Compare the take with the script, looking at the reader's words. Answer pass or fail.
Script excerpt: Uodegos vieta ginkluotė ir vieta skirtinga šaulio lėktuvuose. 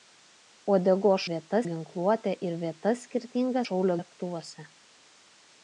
pass